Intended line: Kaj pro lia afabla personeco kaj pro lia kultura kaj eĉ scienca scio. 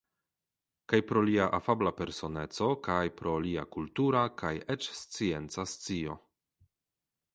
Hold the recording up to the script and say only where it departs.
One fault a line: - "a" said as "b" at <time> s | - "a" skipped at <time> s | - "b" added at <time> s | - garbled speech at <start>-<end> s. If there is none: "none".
none